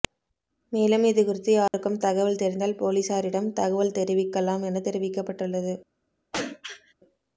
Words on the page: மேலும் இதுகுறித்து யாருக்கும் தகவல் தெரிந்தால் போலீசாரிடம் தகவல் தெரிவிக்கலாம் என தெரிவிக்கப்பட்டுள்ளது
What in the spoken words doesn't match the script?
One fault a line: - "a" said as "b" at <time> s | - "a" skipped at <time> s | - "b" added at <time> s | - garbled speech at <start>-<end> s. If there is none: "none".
none